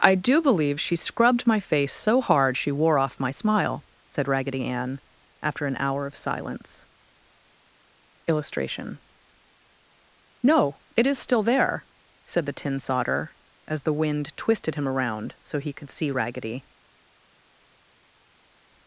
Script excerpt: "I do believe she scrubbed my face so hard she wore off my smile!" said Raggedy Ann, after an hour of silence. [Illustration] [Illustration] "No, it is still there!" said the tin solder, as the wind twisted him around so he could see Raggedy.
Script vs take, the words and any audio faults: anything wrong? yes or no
yes